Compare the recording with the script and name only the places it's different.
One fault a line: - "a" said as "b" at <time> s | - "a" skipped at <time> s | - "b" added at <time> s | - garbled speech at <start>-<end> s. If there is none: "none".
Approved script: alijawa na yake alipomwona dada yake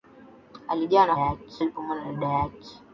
none